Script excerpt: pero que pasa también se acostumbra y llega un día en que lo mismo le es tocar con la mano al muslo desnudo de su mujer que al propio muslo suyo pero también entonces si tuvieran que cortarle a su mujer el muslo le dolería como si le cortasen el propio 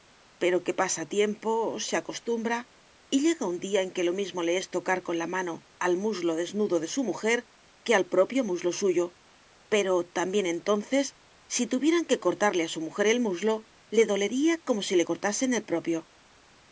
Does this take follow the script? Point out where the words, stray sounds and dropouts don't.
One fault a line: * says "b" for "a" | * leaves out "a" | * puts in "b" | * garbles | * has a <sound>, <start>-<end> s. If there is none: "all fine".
* says "tiempo" for "también"